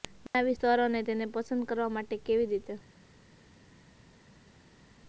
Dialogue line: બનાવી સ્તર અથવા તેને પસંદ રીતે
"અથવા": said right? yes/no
no